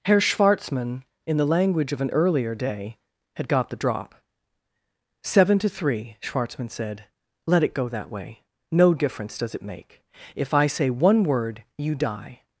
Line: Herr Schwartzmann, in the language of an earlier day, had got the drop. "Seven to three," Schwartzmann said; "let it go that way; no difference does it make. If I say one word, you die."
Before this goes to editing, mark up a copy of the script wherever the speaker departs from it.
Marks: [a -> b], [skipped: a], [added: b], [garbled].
Herr Schwartzmann, in the language of an earlier day, had got the drop. "Seven to three," Schwartzmann said; "let it go that way; no difference does it make. If I say one word, you die."